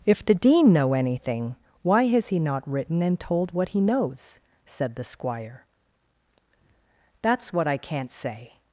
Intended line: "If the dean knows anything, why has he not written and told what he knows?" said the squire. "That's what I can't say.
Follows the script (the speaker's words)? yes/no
no